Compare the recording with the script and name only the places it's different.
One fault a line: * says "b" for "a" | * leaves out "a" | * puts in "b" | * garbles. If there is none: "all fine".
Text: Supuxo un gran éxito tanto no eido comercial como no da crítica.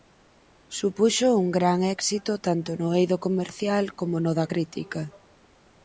all fine